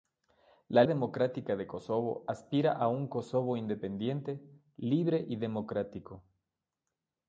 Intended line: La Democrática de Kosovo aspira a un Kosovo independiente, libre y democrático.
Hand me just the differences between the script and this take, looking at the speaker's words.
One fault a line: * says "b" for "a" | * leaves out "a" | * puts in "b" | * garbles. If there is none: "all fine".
all fine